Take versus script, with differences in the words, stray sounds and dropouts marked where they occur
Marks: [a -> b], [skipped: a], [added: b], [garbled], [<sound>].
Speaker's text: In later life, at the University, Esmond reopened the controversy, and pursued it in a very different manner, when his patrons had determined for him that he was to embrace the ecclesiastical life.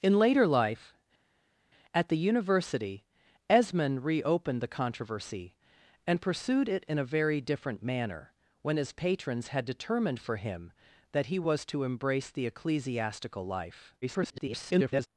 In later life, at the University, Esmond reopened the controversy, and pursued it in a very different manner, when his patrons had determined for him that he was to embrace the ecclesiastical life. [garbled]